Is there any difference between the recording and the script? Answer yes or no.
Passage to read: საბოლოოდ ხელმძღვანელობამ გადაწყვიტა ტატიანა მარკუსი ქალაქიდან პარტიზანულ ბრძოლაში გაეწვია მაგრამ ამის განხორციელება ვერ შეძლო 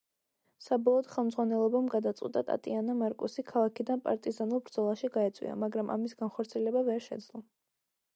no